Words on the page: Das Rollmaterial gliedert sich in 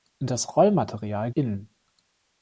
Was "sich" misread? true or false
true